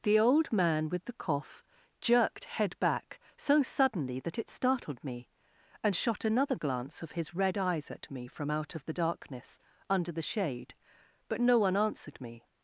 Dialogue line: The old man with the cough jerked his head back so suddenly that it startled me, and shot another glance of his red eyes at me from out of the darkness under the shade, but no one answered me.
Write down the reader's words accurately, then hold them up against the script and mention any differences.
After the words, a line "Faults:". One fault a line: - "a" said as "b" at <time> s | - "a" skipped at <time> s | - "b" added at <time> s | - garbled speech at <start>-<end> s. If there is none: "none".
The old man with the cough jerked head back so suddenly that it startled me, and shot another glance of his red eyes at me from out of the darkness under the shade, but no one answered me.
Faults:
- "his" skipped at 2.5 s